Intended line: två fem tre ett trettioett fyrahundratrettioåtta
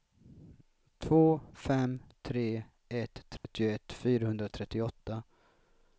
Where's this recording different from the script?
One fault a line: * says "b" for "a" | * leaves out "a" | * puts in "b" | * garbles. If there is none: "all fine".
all fine